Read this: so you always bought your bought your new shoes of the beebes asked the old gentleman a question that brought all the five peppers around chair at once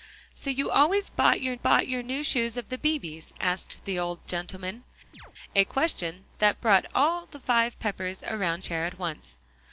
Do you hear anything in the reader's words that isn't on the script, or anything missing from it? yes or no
no